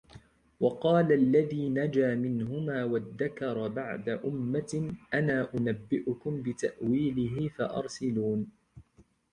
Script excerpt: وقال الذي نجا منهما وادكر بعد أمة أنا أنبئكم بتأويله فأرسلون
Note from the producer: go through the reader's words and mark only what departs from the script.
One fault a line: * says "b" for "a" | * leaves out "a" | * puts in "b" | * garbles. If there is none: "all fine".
all fine